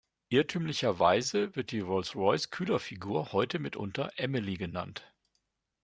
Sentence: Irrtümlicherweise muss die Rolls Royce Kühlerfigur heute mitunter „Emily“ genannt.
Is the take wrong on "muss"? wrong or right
wrong